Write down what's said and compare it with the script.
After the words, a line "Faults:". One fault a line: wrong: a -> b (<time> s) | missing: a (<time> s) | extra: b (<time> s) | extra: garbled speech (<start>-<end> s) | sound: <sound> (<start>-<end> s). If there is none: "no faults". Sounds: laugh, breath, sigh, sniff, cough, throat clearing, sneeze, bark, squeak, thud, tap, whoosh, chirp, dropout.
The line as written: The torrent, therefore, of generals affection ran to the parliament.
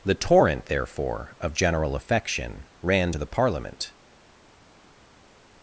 The torrent, therefore, of general affection ran to the parliament.
Faults:
wrong: generals -> general (1.5 s)